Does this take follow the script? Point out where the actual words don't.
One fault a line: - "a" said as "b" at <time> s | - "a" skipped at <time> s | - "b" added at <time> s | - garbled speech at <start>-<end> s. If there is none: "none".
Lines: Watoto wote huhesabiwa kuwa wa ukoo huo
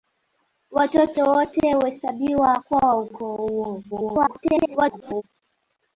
- garbled speech at 3.9-5.2 s